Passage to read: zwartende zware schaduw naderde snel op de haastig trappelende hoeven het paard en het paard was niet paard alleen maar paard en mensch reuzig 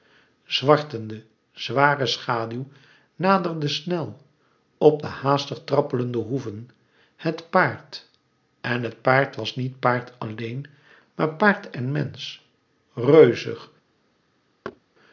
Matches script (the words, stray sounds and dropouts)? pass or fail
fail